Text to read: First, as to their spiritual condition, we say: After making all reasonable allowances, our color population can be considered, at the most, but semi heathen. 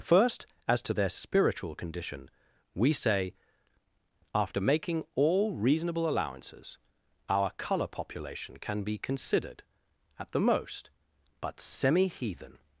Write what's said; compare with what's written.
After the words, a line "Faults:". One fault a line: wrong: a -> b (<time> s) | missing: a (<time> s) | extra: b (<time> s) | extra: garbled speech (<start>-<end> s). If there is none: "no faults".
First, as to their spiritual condition, we say: After making all reasonable allowances, our color population can be considered, at the most, but semi heathen.
Faults:
no faults